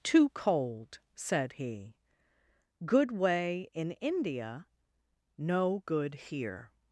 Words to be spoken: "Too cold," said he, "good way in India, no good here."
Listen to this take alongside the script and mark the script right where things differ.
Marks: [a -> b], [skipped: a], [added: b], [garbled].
"Too cold," said he, "good way in India, no good here."